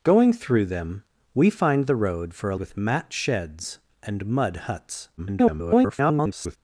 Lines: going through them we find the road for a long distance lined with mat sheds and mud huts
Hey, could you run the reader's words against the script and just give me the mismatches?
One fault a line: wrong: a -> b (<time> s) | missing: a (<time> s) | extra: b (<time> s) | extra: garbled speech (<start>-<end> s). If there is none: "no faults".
missing: long distance lined (2.5 s)
extra: garbled speech (5.2-6.6 s)